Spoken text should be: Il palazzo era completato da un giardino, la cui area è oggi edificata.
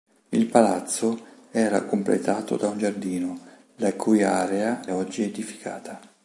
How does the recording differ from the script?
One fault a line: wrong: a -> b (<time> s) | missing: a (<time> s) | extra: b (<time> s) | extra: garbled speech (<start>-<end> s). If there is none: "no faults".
missing: è (4.8 s)